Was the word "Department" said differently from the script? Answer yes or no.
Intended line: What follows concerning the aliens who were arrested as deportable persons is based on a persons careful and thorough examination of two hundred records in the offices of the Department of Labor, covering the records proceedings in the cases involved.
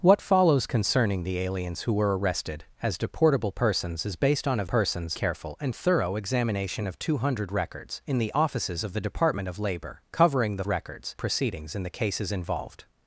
no